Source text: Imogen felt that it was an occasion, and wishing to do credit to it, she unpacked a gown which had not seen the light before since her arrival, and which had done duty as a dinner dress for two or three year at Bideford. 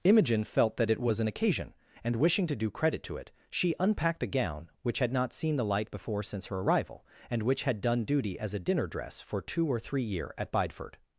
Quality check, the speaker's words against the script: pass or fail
pass